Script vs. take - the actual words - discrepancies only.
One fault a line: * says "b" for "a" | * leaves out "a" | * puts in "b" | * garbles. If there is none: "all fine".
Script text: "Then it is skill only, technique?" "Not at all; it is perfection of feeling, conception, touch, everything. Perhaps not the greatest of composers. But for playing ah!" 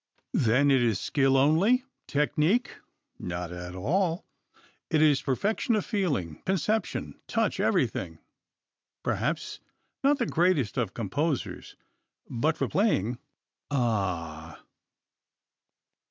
all fine